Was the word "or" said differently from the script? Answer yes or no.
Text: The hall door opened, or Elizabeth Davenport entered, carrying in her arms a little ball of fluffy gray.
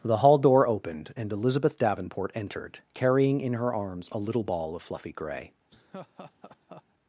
yes